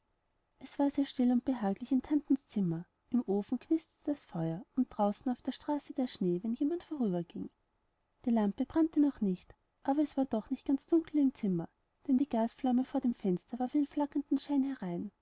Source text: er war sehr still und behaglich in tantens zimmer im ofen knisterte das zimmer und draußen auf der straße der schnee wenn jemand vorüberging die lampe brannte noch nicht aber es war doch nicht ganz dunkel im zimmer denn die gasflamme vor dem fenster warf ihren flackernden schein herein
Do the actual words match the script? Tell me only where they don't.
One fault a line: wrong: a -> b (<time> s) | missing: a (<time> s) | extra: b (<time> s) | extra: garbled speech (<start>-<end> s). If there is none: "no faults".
wrong: er -> es (0.6 s)
wrong: zimmer -> feuer (4.2 s)